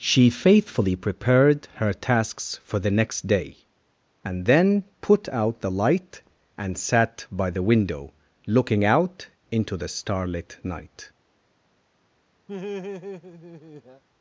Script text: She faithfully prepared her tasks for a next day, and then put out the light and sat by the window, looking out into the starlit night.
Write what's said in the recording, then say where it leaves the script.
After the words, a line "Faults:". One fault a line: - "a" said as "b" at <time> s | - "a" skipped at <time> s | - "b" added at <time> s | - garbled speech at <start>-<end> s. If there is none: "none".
She faithfully prepared her tasks for the next day, and then put out the light and sat by the window, looking out into the starlit night.
Faults:
- "a" said as "the" at 2.8 s